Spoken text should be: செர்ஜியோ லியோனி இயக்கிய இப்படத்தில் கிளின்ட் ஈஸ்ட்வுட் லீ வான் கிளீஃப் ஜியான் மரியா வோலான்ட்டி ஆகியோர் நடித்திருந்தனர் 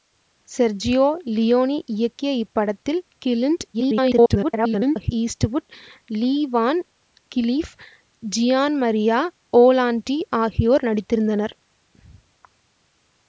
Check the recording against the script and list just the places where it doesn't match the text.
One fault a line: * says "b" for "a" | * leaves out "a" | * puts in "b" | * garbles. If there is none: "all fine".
* garbles